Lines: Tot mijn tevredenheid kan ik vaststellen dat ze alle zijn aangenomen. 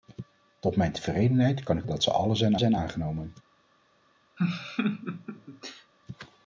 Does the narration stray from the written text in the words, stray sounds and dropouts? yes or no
yes